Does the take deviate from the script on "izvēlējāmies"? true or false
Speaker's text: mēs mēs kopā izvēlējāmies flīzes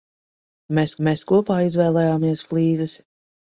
false